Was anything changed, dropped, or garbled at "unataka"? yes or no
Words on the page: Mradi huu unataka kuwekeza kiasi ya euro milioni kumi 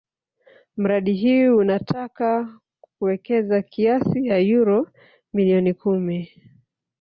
no